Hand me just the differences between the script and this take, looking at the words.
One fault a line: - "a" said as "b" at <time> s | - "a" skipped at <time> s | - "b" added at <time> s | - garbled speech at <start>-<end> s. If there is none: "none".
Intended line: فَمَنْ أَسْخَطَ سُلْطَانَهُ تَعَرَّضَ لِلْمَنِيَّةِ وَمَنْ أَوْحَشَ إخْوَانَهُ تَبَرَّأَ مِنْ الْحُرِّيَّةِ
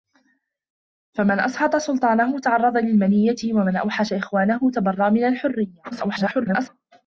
- garbled speech at 5.9-6.7 s